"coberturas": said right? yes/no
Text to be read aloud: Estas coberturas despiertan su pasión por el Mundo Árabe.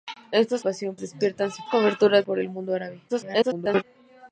no